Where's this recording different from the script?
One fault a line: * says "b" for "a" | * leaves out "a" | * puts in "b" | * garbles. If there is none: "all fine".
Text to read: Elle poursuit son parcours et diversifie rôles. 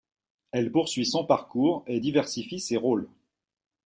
* puts in "ses"